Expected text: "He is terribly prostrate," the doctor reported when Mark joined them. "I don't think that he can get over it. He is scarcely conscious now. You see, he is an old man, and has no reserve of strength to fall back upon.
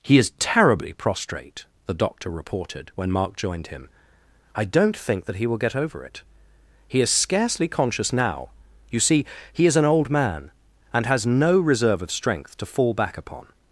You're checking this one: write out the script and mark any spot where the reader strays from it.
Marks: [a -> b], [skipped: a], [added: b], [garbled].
"He is terribly prostrate," the doctor reported when Mark joined [them. -> him] "I don't think that he [can -> will] get over it. He is scarcely conscious now. You see, he is an old man, and has no reserve of strength to fall back upon.